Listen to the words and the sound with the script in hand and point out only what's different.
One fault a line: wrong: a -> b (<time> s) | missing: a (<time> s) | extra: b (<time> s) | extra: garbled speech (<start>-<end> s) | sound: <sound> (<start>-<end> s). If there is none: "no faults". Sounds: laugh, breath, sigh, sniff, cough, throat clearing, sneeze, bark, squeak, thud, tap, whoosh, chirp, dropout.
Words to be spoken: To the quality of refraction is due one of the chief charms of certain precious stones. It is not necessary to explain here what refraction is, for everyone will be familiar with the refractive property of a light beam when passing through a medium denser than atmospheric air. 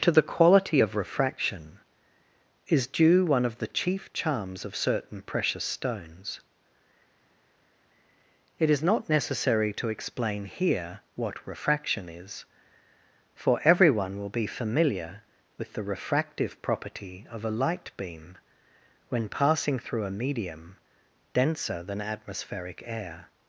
no faults